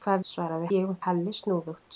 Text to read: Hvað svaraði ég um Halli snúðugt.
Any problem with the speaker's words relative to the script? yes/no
no